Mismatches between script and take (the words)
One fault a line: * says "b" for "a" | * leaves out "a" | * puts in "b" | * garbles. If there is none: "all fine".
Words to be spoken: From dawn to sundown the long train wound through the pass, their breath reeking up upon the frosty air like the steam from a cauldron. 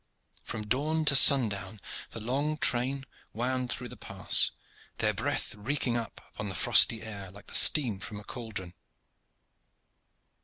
all fine